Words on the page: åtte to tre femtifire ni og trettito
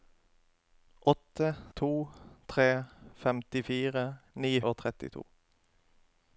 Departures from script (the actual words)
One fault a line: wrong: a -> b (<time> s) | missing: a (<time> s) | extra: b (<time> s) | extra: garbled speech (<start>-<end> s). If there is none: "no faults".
no faults